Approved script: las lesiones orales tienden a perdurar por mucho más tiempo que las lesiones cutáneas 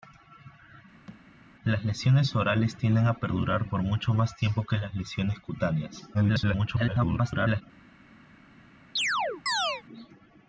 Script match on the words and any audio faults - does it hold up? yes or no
no